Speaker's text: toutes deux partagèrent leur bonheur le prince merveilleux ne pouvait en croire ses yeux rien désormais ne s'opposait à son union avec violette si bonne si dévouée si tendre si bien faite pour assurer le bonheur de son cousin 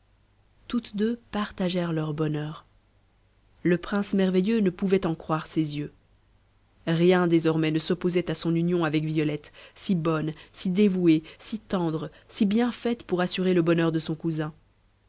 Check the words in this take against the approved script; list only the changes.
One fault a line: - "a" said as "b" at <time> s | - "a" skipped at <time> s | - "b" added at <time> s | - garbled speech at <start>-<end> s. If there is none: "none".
none